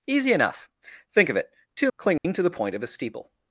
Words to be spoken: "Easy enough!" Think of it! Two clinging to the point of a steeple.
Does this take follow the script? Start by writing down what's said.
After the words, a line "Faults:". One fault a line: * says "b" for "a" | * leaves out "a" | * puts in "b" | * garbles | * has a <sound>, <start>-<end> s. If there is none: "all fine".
"Easy enough!" Think of it! Two clinging to the point of a steeple.
Faults:
* has a dropout, 2.2-2.2 s